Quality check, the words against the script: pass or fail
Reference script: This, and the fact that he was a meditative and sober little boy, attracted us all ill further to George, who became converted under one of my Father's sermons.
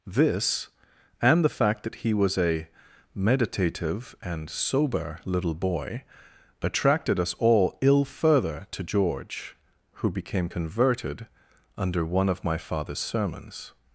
pass